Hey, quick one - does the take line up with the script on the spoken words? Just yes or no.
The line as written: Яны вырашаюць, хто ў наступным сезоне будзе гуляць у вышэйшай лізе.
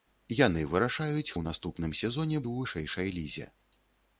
no